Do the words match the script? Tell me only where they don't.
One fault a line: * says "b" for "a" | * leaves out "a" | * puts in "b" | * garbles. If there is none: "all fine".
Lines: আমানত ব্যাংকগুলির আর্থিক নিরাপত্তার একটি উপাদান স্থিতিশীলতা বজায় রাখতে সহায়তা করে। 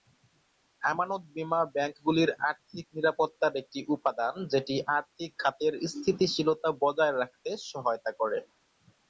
* puts in "বীমা"
* puts in "যেটি আর্থিক খাতের"